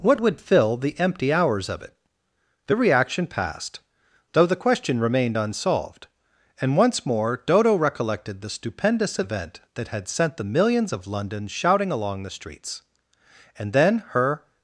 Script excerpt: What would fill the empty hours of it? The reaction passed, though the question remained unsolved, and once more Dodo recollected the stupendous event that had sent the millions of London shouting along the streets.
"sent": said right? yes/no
yes